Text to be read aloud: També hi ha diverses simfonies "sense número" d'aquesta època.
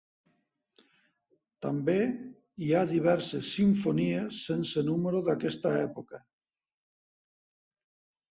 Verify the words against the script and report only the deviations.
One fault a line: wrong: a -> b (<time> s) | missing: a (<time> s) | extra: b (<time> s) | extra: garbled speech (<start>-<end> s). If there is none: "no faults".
no faults